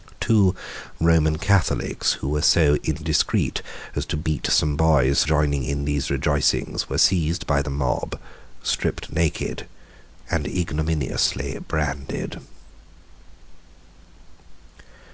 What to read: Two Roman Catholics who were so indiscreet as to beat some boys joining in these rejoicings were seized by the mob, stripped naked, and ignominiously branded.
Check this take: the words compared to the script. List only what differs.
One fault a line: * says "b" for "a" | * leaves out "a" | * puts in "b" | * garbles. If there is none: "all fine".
all fine